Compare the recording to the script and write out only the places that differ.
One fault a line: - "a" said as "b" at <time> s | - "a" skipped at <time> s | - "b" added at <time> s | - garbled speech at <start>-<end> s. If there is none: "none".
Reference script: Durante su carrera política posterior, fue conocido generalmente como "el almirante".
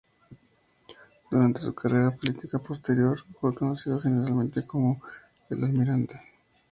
none